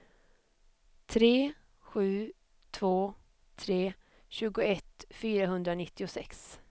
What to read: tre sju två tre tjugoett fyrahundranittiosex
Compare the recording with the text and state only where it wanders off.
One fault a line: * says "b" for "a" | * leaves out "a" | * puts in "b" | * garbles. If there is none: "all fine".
all fine